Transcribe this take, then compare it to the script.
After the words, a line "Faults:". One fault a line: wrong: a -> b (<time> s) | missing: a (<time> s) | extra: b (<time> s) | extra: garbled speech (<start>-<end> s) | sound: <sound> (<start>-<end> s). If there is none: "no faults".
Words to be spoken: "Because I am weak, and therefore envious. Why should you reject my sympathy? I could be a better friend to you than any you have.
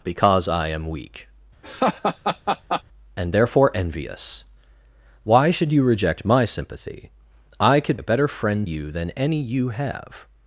"Because I am weak, and therefore envious. Why should you reject my sympathy? I could a better friend you than any you have.
Faults:
sound: laugh (1.6-2.8 s)
missing: be (8.0 s)
missing: to (8.7 s)